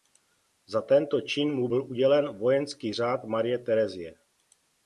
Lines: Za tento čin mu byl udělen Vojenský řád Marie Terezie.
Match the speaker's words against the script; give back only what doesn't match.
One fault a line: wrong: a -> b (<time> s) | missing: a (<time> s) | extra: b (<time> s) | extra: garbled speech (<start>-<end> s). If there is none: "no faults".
no faults